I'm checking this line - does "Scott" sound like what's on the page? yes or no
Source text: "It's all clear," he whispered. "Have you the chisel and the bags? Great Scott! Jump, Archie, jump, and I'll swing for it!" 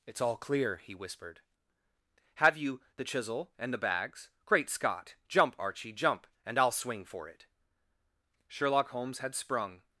yes